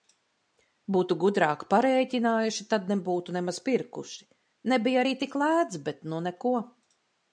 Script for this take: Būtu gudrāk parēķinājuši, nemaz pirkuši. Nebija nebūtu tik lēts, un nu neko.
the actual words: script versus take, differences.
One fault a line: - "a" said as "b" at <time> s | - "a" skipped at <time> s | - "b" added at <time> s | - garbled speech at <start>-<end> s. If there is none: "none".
- "tad nebūtu" added at 2.7 s
- "nebūtu" said as "arī" at 5.0 s
- "un" said as "bet" at 5.9 s